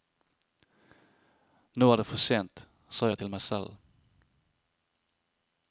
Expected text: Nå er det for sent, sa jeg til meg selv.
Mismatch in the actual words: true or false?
false